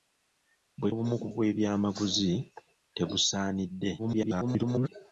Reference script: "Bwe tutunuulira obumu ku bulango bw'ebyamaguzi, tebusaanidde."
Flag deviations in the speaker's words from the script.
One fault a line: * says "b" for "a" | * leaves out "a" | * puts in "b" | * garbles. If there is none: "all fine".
* leaves out "tutunuulira"
* leaves out "bulango"
* garbles